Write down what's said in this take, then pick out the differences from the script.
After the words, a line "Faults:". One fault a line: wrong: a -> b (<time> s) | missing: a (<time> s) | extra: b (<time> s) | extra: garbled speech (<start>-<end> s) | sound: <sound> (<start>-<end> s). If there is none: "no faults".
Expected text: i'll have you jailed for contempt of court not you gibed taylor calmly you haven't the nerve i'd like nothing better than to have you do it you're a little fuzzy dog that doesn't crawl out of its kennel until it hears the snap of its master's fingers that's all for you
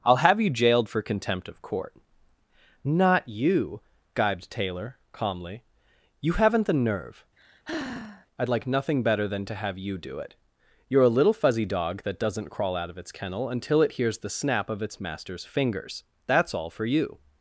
i'll have you jailed for contempt of court not you gibed taylor calmly you haven't the nerve i'd like nothing better than to have you do it you're a little fuzzy dog that doesn't crawl out of its kennel until it hears the snap of its master's fingers that's all for you
Faults:
sound: sigh (7.4-8.3 s)